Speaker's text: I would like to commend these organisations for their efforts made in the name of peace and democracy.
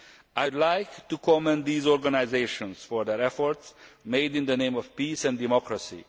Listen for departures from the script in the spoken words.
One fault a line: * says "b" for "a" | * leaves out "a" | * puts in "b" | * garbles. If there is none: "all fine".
all fine